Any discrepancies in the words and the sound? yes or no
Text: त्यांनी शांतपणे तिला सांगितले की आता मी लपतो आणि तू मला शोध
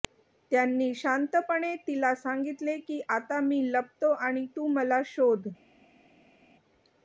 no